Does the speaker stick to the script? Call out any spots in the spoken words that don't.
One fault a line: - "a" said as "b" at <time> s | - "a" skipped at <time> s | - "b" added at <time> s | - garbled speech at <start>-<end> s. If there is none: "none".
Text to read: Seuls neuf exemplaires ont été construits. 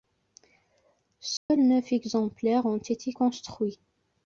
none